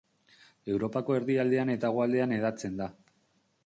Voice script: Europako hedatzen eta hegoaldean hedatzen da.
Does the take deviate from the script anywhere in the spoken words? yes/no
yes